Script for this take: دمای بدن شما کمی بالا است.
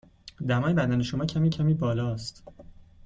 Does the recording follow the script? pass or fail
fail